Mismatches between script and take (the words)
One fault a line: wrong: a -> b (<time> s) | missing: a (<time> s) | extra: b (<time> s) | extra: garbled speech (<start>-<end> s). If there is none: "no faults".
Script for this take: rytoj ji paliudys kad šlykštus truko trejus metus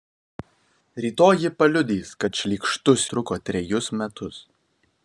no faults